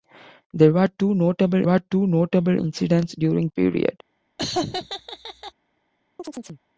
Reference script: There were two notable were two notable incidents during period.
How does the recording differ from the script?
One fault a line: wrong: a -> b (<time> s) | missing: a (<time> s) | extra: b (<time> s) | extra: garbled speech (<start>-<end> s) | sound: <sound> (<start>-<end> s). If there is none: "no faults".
sound: laugh (4.4-5.5 s)
sound: chirp (6.2-6.6 s)